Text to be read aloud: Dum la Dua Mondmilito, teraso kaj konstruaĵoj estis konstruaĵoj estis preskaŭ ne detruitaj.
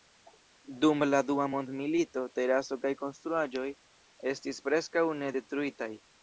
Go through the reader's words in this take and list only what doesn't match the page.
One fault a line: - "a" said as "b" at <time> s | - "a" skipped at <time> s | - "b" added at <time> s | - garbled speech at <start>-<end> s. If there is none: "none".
- "konstruaĵoj estis" skipped at 4.6 s